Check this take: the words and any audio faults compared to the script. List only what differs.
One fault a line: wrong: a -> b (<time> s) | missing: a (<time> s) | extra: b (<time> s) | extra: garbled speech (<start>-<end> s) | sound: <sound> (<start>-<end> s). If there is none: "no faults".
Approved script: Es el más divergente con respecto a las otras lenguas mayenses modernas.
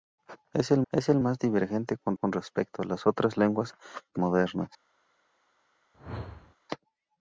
extra: es el (0.9 s)
extra: con (2.1 s)
missing: mayenses (3.7 s)
sound: whoosh (5.9-6.6 s)